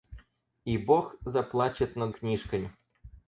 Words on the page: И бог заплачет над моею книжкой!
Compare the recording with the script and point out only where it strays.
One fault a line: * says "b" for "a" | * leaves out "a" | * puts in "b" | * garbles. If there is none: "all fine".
* leaves out "моею"